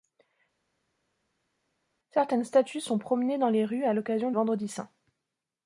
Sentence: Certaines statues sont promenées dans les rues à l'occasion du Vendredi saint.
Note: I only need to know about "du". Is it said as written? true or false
false